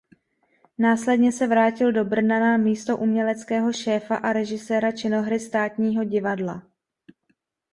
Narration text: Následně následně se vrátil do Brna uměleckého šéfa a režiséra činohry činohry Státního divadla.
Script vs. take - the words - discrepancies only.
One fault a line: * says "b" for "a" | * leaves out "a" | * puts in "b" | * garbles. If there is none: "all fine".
* leaves out "následně"
* puts in "na místo"
* leaves out "činohry"